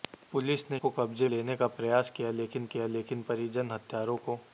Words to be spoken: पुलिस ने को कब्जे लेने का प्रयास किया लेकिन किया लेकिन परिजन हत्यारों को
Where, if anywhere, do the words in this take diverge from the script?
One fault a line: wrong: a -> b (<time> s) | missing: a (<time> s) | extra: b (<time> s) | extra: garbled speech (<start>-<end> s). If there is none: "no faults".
no faults